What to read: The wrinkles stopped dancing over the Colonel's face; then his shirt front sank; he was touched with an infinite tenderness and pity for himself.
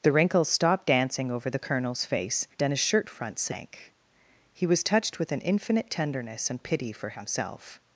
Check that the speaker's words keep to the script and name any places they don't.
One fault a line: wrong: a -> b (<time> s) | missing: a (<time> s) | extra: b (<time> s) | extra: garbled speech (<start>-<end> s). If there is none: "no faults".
no faults